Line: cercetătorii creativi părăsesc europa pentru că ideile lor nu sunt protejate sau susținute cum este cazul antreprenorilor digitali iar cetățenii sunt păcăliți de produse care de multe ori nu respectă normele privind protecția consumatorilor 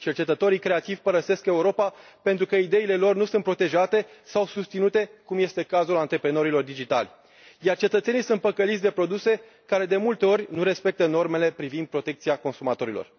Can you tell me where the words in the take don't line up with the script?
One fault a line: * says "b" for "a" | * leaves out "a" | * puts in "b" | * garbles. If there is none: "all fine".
all fine